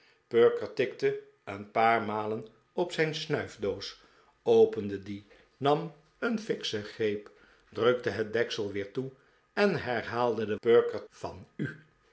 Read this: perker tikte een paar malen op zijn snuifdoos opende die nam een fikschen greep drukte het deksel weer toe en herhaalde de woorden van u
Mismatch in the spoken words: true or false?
true